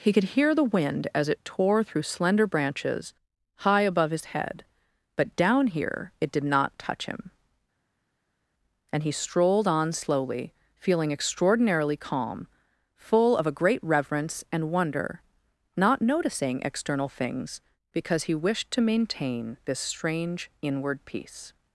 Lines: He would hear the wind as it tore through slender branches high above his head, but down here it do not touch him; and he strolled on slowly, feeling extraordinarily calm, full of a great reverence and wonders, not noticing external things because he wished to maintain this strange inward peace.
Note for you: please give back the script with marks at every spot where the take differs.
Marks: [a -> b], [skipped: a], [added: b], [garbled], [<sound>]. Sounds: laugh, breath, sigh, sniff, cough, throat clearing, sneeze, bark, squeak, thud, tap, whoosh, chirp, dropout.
He [would -> could] hear the wind as it tore through slender branches high above his head, but down here it [do -> did] not touch him; and he strolled on slowly, feeling extraordinarily calm, full of a great reverence and [wonders, -> wonder] not noticing external things because he wished to maintain this strange inward peace.